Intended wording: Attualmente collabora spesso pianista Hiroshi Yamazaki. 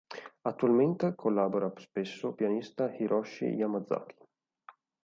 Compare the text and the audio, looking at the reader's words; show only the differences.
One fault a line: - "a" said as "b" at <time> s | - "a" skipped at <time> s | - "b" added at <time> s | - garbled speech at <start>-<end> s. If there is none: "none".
none